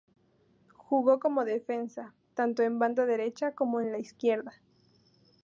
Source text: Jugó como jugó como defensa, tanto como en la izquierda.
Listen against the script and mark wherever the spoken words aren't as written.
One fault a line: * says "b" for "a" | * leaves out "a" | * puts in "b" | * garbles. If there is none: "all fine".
* says "defensa tanto en banda derecha" for "jugó como defensa tanto"